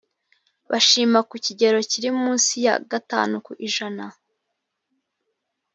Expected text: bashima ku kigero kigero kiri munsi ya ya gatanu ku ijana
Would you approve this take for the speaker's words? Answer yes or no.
no